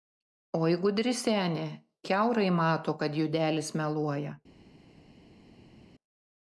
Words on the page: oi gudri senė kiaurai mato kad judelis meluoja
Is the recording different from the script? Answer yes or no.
no